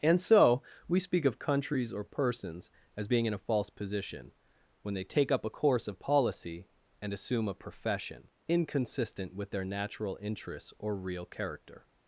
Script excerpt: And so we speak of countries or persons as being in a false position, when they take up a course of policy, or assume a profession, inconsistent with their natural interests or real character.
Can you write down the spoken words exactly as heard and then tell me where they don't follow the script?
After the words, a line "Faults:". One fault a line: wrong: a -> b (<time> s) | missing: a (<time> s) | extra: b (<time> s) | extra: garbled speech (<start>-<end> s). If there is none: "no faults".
And so we speak of countries or persons as being in a false position, when they take up a course of policy, and assume a profession, inconsistent with their natural interests or real character.
Faults:
wrong: or -> and (7.0 s)